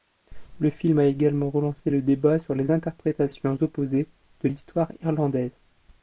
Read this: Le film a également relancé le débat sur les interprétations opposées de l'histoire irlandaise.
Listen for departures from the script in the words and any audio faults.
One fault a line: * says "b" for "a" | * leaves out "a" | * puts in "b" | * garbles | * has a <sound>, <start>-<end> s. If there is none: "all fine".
all fine